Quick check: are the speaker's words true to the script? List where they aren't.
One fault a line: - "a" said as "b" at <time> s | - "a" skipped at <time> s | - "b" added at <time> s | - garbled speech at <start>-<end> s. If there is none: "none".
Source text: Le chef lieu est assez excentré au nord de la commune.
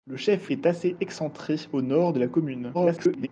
- "lieu" skipped at 0.5 s
- garbled speech at 2.7-3.3 s